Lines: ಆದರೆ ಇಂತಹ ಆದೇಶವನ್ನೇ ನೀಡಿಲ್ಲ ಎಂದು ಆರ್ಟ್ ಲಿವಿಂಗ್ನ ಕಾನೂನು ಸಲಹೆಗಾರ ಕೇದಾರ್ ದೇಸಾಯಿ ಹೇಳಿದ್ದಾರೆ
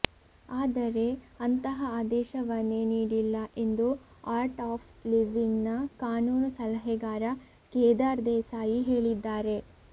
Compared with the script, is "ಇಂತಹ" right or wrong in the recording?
wrong